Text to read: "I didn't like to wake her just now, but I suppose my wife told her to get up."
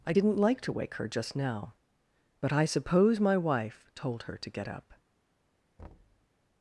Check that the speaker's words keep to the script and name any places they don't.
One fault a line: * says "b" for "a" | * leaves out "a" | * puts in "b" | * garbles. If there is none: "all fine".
all fine